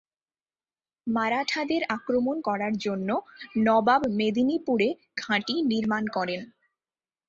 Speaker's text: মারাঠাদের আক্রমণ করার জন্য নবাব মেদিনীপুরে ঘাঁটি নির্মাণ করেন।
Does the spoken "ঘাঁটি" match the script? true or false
true